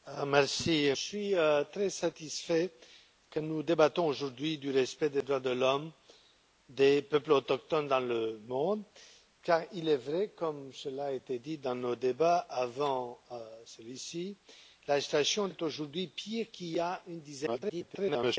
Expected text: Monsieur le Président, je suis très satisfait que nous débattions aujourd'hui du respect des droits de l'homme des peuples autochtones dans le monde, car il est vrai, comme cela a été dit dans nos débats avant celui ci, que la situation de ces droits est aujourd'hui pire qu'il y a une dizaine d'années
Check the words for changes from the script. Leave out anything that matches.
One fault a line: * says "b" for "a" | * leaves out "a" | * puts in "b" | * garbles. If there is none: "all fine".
* leaves out "le Président je"
* leaves out "de ces droits"
* garbles